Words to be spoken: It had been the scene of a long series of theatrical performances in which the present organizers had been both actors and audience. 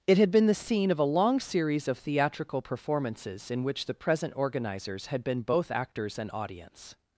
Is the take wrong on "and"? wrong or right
right